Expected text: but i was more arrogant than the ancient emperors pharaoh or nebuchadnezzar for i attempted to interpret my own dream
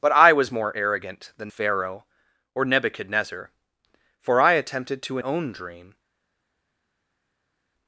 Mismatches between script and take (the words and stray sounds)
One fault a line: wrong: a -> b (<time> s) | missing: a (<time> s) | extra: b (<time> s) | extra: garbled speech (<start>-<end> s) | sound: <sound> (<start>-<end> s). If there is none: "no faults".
missing: the ancient emperors (1.5 s)
missing: interpret my (5.2 s)